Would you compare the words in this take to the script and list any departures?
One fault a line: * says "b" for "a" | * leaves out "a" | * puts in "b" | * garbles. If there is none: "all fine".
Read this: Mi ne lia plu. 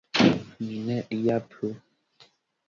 all fine